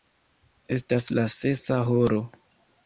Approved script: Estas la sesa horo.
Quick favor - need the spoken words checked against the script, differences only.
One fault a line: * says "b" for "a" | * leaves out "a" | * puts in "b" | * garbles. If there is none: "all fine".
all fine